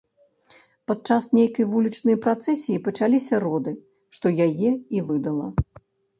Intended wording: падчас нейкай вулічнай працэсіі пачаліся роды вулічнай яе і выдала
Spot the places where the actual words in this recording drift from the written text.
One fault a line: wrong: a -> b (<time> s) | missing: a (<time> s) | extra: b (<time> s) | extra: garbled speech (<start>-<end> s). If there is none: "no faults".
wrong: вулічнай -> што (4.2 s)